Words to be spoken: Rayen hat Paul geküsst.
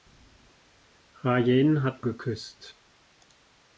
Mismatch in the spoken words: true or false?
true